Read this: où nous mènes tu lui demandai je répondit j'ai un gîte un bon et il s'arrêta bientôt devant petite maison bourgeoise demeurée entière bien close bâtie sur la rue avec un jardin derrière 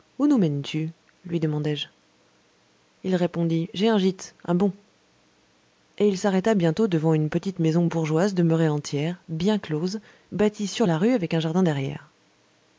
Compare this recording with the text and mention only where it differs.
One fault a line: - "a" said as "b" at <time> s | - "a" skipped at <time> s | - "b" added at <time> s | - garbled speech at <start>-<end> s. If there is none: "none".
- "il" added at 3.0 s
- "une" added at 7.1 s